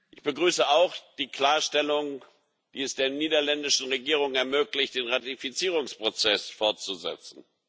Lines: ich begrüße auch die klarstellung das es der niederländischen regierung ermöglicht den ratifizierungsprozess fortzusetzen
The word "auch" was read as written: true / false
true